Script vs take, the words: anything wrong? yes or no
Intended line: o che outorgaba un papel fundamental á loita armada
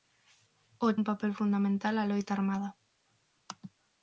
yes